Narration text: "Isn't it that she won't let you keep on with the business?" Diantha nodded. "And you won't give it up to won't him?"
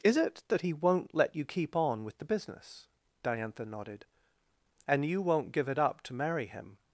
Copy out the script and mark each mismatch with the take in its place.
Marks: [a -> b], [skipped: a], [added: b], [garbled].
["Isn't -> Is] it that [she -> he] won't let you keep on with the business?" Diantha nodded. "And you won't give it up to [won't -> marry] him?"